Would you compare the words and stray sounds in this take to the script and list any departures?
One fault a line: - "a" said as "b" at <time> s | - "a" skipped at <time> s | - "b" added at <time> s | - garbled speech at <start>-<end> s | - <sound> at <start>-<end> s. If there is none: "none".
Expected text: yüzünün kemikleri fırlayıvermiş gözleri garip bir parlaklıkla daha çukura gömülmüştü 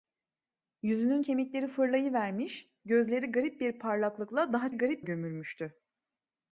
- "çukura" said as "garip" at 4.7 s